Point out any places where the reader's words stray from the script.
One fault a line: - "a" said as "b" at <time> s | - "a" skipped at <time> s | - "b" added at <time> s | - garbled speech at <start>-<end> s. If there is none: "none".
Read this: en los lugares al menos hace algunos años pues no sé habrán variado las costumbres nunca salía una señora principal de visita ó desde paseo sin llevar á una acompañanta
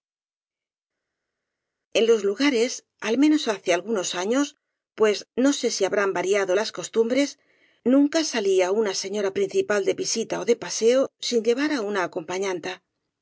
- "si" added at 5.7 s
- "desde" said as "de" at 10.4 s